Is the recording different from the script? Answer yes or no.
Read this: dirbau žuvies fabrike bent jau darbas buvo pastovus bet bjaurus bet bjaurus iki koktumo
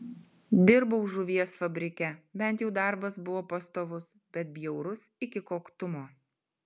yes